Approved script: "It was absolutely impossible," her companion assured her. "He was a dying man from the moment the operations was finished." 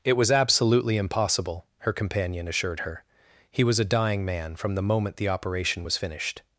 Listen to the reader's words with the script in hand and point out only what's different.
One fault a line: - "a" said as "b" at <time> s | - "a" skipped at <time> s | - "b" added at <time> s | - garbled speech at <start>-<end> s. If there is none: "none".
- "operations" said as "operation" at 5.3 s